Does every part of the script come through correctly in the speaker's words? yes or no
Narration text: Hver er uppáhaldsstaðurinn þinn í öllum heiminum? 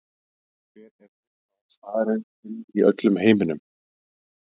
yes